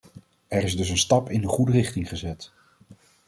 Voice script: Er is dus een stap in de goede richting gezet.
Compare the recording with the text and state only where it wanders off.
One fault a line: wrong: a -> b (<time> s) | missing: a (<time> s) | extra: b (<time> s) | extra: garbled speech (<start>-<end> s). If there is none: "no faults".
no faults